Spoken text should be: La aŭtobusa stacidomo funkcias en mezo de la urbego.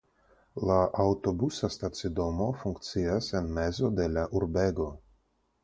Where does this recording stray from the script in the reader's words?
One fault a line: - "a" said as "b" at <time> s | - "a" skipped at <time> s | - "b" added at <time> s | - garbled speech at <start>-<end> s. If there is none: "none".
none